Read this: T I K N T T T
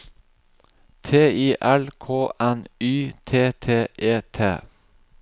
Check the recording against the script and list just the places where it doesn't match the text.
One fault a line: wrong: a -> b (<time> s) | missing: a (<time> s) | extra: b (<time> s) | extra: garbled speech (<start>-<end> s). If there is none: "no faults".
extra: L (1.6 s)
extra: Y (2.8 s)
extra: E (4.0 s)